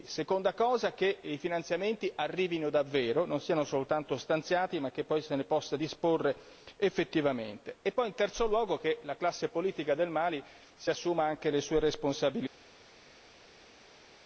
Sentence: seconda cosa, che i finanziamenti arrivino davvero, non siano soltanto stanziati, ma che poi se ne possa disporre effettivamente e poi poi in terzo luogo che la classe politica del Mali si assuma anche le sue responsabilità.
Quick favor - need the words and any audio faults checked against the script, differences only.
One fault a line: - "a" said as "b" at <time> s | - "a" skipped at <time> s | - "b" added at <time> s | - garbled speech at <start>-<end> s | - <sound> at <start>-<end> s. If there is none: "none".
- "poi" skipped at 8.1 s